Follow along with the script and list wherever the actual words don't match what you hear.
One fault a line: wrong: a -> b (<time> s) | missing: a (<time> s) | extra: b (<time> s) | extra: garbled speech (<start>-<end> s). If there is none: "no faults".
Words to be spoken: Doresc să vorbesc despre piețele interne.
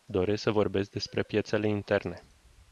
no faults